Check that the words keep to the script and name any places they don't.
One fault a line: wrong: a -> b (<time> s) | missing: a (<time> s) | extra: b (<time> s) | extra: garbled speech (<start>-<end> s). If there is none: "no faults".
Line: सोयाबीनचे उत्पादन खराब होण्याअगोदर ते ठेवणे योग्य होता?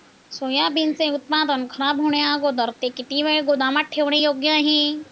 extra: किती वेळ गोदामात (3.0 s)
wrong: होता -> आहे (4.5 s)